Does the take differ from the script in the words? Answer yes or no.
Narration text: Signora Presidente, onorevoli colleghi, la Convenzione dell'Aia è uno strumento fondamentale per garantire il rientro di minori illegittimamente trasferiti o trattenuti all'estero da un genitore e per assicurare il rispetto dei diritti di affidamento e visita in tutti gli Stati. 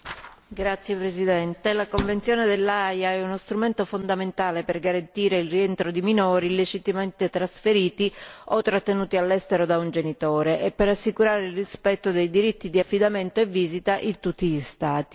no